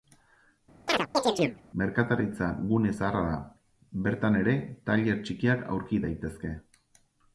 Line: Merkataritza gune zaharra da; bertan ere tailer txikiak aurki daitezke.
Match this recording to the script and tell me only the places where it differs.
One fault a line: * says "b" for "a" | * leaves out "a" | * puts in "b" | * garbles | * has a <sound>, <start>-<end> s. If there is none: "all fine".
* has a chirp, 0.9-1.6 s